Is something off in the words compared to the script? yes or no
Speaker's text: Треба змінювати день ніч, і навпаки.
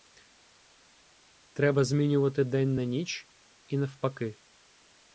yes